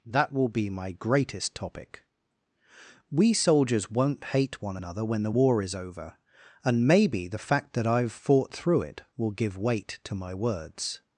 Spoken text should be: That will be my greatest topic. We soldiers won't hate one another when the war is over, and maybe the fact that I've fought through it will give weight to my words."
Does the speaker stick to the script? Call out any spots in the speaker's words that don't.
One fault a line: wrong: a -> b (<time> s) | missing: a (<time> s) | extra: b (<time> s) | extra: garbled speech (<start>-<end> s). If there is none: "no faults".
no faults